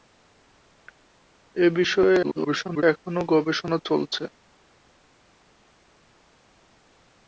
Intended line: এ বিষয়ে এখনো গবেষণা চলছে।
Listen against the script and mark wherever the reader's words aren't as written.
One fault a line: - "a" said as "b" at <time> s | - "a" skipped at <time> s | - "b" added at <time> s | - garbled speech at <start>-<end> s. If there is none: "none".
- garbled speech at 2.2-2.8 s